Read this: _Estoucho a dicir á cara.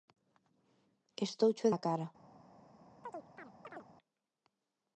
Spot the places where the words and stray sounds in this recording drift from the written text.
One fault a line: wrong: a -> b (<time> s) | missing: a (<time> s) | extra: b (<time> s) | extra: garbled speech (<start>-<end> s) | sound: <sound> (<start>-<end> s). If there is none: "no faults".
missing: dicir (1.7 s)
sound: chirp (3.0-3.9 s)